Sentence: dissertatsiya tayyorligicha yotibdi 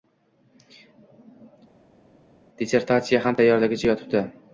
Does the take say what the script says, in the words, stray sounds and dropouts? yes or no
no